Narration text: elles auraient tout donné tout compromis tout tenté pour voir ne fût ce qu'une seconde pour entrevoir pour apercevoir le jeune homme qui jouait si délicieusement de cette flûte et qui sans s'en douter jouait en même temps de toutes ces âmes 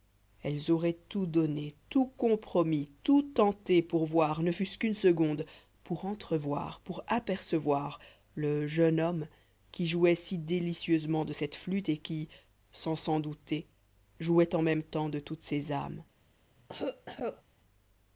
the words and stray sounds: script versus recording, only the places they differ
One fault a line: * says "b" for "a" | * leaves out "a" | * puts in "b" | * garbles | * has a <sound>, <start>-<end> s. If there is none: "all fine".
* has a cough, 16.6-17.4 s